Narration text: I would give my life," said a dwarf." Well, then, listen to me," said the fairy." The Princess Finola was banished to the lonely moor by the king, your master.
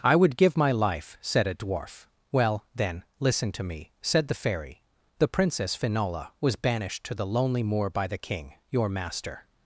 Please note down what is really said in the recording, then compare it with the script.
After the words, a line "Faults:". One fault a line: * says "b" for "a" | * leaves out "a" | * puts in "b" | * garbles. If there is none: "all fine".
I would give my life," said a dwarf." Well, then, listen to me," said the fairy." The Princess Finola was banished to the lonely moor by the king, your master.
Faults:
all fine